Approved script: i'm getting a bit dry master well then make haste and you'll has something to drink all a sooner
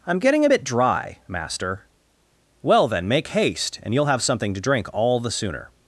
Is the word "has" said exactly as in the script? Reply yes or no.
no